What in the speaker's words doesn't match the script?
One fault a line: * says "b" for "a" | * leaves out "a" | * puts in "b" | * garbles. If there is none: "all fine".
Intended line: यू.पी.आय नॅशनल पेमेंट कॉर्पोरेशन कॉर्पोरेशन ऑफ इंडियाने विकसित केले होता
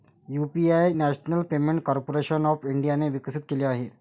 * leaves out "कॉर्पोरेशन"
* says "आहे" for "होता"